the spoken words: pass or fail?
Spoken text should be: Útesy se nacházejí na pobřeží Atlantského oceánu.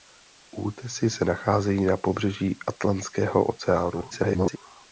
fail